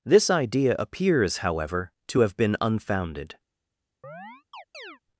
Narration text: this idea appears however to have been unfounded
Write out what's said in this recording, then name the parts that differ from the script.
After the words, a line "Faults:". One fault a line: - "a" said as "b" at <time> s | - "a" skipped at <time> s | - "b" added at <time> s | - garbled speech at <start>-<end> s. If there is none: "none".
this idea appears however to have been unfounded
Faults:
none